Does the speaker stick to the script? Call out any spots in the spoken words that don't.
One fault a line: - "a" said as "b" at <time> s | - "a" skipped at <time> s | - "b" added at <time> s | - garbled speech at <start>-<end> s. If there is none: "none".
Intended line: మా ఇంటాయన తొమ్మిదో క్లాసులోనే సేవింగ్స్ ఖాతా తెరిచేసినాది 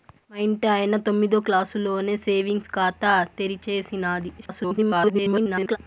- garbled speech at 4.4-5.8 s